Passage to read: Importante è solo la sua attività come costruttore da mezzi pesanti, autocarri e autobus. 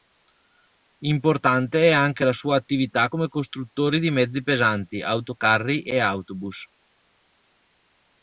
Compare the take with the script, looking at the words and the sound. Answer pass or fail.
fail